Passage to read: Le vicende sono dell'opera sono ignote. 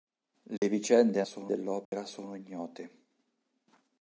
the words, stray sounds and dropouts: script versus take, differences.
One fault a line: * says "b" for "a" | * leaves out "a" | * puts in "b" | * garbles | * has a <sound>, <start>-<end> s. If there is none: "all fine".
* has a dropout, 0.6-0.6 s
* has a dropout, 1.8-1.9 s